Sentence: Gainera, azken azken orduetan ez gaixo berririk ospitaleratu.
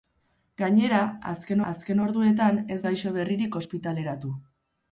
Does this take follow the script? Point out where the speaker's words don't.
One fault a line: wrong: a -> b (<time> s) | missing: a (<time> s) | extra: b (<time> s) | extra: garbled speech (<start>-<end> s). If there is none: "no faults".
no faults